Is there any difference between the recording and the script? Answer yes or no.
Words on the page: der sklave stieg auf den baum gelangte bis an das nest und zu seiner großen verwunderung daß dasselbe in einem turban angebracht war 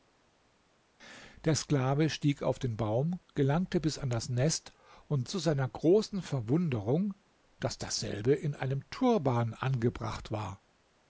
no